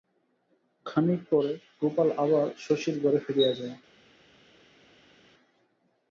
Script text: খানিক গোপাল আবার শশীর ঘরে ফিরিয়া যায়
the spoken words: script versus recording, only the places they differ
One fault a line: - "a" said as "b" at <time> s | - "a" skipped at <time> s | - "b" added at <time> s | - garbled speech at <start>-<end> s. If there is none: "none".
- "পরে" added at 1.3 s